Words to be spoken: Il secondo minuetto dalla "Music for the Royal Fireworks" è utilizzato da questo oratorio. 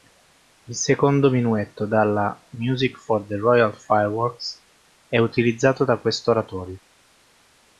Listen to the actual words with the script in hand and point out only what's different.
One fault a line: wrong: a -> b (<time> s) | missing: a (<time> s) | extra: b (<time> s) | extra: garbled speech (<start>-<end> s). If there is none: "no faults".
no faults